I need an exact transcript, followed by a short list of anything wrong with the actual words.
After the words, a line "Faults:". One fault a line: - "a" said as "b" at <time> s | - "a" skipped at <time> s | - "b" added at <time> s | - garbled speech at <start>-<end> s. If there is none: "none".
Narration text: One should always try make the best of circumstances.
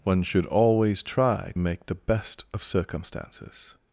One should always try make the best of circumstances.
Faults:
none